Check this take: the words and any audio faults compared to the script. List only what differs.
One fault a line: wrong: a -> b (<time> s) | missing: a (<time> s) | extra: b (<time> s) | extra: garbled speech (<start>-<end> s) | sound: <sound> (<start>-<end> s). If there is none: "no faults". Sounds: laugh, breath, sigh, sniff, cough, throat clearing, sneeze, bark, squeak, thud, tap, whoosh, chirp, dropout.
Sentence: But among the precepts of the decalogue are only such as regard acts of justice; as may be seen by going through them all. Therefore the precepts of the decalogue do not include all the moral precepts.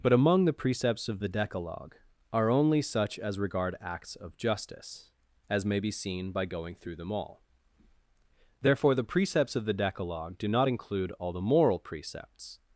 no faults